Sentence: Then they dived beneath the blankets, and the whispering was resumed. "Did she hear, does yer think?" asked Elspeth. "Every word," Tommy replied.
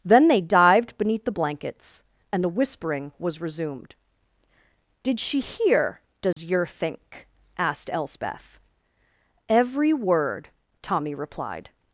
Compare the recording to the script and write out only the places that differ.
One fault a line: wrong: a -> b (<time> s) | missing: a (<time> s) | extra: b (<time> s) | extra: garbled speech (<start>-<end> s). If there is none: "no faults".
no faults